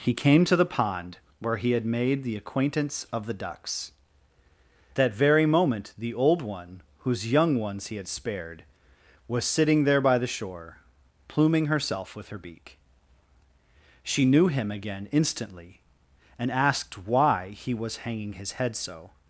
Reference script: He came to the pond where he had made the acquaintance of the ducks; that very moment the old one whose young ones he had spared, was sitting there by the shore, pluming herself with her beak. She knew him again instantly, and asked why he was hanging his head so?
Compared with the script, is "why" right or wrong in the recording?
right